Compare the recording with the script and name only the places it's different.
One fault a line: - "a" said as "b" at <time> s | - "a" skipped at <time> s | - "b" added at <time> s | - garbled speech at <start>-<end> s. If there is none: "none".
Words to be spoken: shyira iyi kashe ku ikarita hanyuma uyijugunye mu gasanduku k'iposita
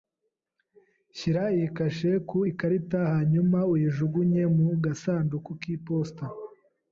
none